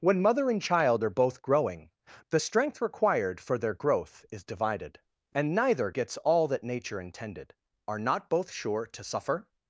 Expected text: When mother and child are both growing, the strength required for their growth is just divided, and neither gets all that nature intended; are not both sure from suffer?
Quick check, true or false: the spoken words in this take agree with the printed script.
false